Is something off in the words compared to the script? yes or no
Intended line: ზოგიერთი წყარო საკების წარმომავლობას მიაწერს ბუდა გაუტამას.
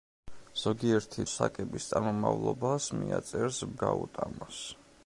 yes